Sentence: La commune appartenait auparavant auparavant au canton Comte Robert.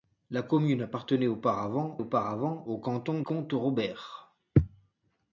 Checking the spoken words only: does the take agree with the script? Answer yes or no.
yes